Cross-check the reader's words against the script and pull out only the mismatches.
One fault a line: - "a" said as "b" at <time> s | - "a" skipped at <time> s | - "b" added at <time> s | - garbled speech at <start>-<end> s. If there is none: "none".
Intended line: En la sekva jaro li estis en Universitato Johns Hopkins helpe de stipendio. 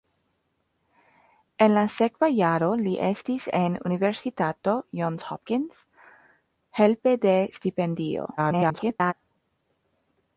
- garbled speech at 8.4-9.1 s